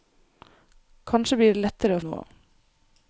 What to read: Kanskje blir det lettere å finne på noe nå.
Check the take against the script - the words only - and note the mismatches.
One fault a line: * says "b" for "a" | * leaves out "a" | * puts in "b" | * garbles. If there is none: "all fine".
* leaves out "finne på noe"